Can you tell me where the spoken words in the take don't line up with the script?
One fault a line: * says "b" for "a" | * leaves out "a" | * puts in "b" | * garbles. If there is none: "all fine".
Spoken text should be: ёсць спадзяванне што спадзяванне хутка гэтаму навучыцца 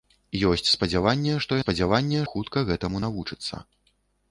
all fine